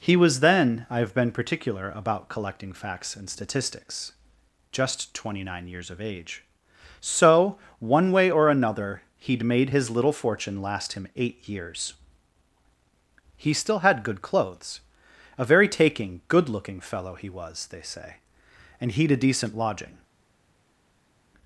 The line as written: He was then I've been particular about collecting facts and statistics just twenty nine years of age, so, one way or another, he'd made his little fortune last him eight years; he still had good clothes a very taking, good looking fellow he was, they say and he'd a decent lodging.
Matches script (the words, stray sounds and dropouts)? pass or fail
pass